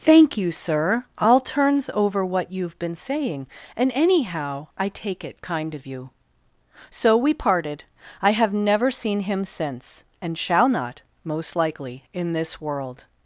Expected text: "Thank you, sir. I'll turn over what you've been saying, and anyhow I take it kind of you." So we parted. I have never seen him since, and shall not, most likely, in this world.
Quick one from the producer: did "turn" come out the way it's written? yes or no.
no